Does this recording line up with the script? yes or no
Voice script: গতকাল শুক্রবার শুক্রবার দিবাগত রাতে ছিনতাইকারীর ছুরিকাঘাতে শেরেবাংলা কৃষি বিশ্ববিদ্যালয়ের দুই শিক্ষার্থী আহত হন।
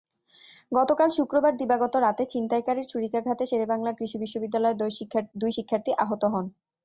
no